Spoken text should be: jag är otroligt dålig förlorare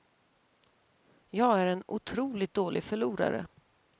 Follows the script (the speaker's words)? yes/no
no